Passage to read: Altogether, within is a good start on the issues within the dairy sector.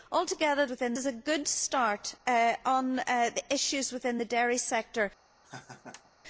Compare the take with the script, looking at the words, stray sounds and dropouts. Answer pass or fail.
fail